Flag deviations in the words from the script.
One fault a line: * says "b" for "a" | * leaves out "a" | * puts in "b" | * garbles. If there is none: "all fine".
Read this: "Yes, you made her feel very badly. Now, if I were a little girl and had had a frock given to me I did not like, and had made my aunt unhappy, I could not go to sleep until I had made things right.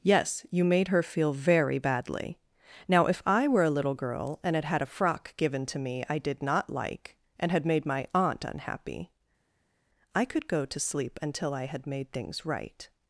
* leaves out "not"